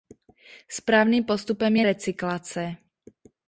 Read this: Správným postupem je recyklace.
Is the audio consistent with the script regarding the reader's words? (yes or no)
yes